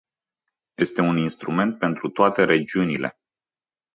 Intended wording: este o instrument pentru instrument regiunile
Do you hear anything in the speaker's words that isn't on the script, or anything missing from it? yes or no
yes